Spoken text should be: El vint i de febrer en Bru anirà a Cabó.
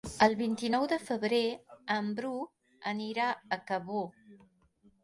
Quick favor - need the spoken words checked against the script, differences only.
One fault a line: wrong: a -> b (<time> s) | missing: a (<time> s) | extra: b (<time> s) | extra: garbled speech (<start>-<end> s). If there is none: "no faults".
extra: nou (0.7 s)